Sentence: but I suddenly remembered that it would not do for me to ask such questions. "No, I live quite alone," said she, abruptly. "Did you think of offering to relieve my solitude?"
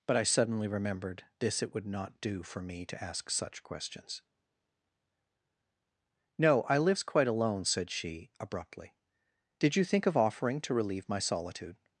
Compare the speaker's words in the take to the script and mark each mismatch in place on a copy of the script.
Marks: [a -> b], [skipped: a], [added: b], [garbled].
but I suddenly remembered [that -> this] it would not do for me to ask such questions. "No, I [live -> lives] quite alone," said she, abruptly. "Did you think of offering to relieve my solitude?"